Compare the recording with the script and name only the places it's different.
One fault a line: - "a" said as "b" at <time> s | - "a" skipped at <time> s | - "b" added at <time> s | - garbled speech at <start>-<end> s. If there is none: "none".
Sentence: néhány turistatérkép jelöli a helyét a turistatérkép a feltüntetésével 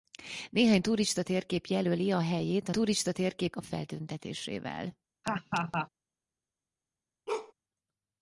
none